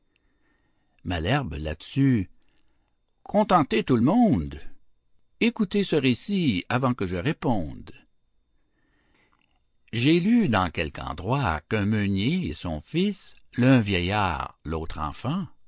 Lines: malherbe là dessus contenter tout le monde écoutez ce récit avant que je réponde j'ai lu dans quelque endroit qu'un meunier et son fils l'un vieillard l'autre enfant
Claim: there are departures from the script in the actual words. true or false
false